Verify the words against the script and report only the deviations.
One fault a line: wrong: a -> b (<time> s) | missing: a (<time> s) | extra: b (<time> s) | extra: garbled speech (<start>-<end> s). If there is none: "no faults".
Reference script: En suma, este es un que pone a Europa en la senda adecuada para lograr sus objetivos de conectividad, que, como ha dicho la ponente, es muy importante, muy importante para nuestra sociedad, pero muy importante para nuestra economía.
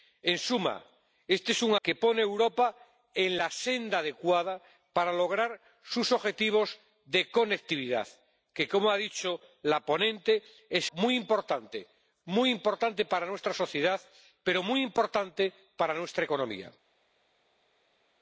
no faults